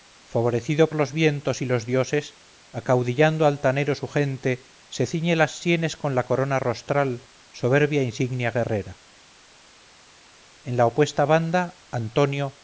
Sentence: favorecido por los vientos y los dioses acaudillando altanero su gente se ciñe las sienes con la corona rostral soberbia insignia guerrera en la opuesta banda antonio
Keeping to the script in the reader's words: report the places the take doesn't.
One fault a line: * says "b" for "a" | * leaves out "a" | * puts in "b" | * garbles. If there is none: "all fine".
* leaves out "por"